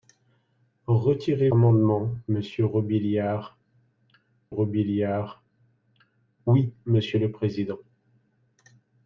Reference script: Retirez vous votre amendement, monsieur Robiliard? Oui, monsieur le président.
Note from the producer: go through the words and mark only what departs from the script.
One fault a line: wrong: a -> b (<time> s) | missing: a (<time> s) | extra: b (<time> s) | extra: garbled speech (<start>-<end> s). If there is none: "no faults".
missing: vous votre (1.5 s)
extra: Robiliard (4.5 s)